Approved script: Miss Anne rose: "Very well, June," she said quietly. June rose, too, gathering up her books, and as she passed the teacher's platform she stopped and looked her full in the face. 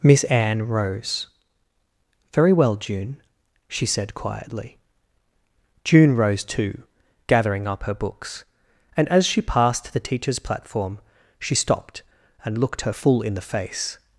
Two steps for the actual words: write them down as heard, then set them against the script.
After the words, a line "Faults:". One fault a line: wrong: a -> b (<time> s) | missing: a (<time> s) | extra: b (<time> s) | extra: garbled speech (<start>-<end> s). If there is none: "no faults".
Miss Anne rose: "Very well, June," she said quietly. June rose, too, gathering up her books, and as she passed the teacher's platform she stopped and looked her full in the face.
Faults:
no faults